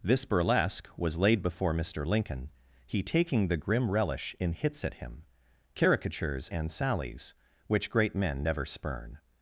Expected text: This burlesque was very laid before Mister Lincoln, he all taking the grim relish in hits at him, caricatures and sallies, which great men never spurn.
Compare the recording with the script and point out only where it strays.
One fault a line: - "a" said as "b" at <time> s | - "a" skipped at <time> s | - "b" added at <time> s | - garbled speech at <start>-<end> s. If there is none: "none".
- "very" skipped at 1.2 s
- "all" skipped at 3.0 s